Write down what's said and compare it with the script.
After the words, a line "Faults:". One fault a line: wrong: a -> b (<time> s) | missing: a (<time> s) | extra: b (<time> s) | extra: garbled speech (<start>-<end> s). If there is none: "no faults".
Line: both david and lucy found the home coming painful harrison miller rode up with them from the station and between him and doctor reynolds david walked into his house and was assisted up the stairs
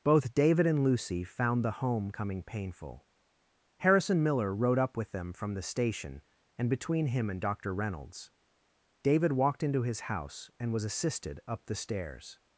both david and lucy found the home coming painful harrison miller rode up with them from the station and between him and doctor reynolds david walked into his house and was assisted up the stairs
Faults:
no faults